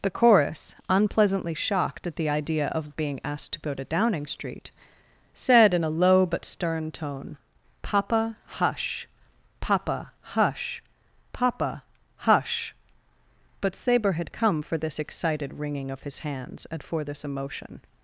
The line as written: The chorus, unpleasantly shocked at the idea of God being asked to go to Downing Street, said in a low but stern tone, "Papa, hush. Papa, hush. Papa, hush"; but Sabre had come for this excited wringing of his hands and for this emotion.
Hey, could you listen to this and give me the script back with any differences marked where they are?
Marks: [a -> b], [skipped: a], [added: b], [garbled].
The chorus, unpleasantly shocked at the idea of [skipped: God] being asked to go to Downing Street, said in a low but stern tone, "Papa, hush. Papa, hush. Papa, hush"; but Sabre had come for this excited wringing of his hands and for this emotion.